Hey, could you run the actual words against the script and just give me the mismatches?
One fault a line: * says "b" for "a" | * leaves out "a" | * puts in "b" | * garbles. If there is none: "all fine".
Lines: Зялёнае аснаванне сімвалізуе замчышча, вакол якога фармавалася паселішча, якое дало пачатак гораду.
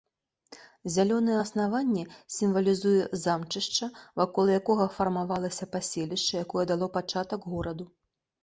all fine